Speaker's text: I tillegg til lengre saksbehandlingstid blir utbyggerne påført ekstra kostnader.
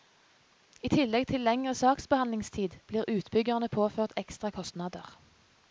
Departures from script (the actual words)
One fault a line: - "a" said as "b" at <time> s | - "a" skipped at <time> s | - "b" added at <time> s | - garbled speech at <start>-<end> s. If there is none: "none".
none